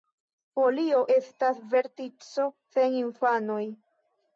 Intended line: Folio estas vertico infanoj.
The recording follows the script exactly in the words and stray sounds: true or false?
false